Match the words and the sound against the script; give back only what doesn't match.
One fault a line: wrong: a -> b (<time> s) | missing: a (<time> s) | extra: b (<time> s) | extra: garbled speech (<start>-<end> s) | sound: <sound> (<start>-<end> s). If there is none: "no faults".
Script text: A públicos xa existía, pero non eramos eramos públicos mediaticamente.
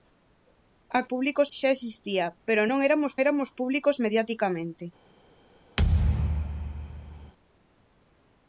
sound: thud (5.8-7.3 s)